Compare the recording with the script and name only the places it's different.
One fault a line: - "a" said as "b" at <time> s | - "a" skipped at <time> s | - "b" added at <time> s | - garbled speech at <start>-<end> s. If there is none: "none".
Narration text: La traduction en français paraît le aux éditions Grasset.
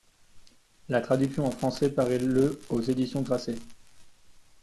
none